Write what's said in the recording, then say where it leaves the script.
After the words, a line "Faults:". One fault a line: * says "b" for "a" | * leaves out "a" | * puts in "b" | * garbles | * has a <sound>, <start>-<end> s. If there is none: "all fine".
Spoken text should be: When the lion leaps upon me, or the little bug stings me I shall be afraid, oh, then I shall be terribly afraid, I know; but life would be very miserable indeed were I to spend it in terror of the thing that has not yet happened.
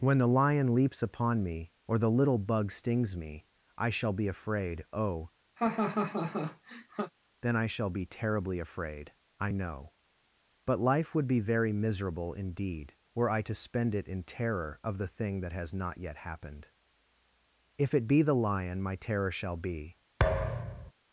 When the lion leaps upon me, or the little bug stings me I shall be afraid, oh, then I shall be terribly afraid, I know; but life would be very miserable indeed were I to spend it in terror of the thing that has not yet happened. If it be the lion my terror shall be
Faults:
* has a laugh, 5.6-7.1 s
* puts in "If it be the lion my terror shall be"
* has a thud, 20.2-20.9 s